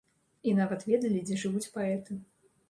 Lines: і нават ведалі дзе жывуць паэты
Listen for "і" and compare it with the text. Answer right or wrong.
right